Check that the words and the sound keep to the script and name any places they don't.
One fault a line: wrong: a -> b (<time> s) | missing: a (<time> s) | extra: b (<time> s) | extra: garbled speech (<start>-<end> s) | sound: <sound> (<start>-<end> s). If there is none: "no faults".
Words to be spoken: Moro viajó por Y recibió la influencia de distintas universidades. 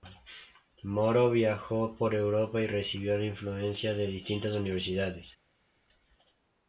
extra: Europa (2.1 s)